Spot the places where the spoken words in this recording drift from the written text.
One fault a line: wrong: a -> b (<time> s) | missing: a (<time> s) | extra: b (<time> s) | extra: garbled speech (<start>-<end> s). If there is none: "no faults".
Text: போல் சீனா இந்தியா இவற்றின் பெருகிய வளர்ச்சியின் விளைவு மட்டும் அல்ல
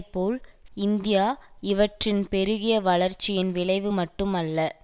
missing: சீனா (0.4 s)